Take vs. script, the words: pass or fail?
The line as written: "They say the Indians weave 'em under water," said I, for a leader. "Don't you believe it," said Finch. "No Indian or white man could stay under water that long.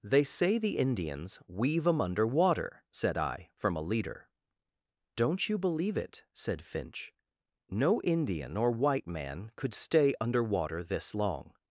fail